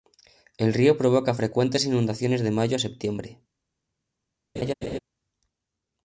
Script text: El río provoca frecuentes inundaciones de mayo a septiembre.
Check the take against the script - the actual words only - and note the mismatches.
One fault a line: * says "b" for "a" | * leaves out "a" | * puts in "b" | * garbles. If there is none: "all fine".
all fine